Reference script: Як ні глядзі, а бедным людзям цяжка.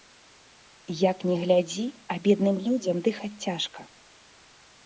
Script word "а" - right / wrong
right